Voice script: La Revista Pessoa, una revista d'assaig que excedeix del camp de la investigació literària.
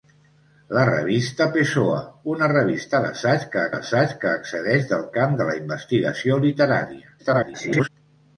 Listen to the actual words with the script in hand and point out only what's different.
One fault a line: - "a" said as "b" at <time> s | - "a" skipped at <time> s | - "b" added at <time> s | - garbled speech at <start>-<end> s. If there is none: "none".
- "d'assaig que" added at 3.7 s
- garbled speech at 7.2-7.9 s